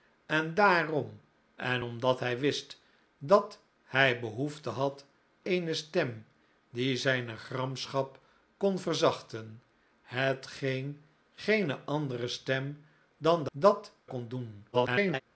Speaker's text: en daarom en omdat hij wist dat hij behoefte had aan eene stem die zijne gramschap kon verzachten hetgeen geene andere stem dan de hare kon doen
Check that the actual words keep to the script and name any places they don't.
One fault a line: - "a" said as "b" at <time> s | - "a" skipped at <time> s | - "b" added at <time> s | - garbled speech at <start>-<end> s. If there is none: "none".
- "aan" skipped at 5.1 s
- "hare" said as "dat" at 13.5 s
- garbled speech at 14.7-15.2 s